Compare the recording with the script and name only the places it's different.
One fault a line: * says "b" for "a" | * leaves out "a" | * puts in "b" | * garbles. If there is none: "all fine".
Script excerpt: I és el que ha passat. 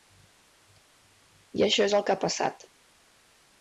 * puts in "això"